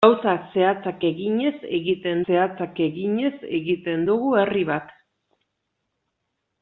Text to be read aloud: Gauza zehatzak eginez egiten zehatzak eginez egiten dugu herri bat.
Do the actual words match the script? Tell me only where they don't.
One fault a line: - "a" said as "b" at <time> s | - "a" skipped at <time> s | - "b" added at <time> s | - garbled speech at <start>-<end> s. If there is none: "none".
none